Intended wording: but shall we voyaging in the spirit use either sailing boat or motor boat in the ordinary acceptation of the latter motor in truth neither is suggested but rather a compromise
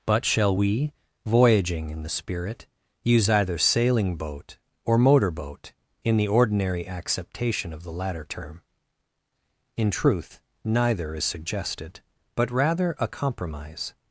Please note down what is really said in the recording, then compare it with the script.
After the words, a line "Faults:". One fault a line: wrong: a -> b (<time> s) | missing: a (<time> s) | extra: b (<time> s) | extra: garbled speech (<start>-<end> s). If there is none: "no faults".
but shall we voyaging in the spirit use either sailing boat or motor boat in the ordinary acceptation of the latter term in truth neither is suggested but rather a compromise
Faults:
wrong: motor -> term (8.2 s)